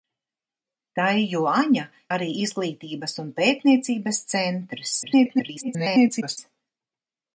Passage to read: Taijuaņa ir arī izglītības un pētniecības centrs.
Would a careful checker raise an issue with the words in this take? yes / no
yes